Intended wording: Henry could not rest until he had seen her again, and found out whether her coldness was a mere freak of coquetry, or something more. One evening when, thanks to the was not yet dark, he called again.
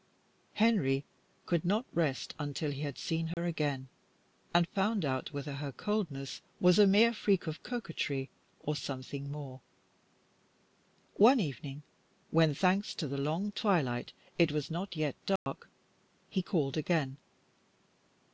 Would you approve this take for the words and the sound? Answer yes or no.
no